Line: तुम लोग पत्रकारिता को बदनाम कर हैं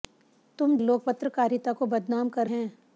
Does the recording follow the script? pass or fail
pass